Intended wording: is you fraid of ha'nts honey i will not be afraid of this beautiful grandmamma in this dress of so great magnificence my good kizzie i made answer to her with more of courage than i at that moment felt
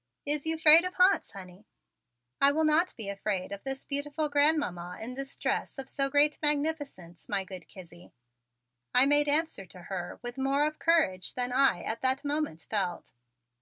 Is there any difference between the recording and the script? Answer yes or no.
no